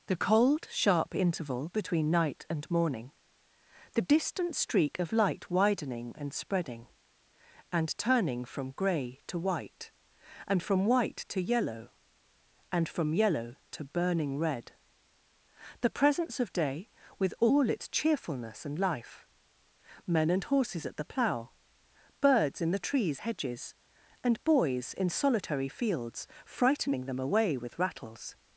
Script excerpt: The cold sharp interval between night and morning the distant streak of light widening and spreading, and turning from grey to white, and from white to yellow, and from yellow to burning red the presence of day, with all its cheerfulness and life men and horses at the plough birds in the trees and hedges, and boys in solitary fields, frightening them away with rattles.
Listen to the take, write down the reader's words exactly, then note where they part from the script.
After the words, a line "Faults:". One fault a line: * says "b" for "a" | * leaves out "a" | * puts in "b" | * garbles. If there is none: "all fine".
The cold sharp interval between night and morning the distant streak of light widening and spreading, and turning from grey to white, and from white to yellow, and from yellow to burning red the presence of day, with all its cheerfulness and life men and horses at the plough birds in the trees hedges, and boys in solitary fields, frightening them away with rattles.
Faults:
* leaves out "and"